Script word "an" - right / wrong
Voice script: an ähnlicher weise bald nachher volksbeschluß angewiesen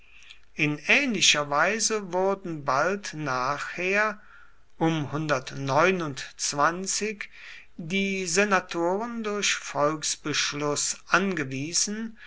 wrong